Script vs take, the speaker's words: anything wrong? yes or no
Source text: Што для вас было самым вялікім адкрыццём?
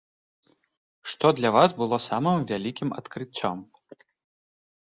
no